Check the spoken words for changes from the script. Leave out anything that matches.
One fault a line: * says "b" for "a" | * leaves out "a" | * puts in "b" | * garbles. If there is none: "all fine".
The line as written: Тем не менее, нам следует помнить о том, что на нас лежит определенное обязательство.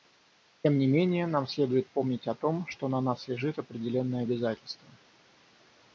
all fine